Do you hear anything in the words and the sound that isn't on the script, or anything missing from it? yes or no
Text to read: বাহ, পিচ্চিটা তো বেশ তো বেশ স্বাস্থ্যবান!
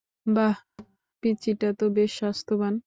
yes